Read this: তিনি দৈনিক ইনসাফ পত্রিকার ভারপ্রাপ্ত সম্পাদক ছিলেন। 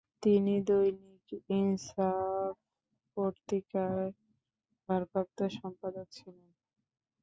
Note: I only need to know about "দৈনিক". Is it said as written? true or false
true